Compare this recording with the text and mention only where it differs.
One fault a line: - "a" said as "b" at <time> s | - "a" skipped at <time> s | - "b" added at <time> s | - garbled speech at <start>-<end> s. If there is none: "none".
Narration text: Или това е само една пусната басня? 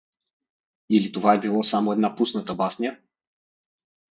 - "било" added at 1.4 s